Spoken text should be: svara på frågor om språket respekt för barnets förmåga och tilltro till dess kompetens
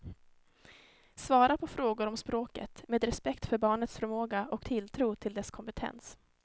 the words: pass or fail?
fail